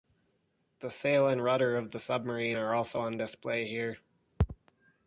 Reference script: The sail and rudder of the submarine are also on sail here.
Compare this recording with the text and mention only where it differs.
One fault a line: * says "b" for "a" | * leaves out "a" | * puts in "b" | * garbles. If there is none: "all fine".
* says "display" for "sail"